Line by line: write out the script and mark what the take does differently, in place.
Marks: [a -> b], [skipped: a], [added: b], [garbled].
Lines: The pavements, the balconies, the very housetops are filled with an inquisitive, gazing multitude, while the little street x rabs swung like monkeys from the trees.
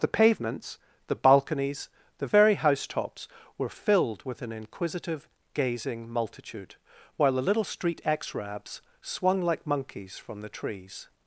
The pavements, the balconies, the very housetops [are -> were] filled with an inquisitive, gazing multitude, while the little street x rabs swung like monkeys from the trees.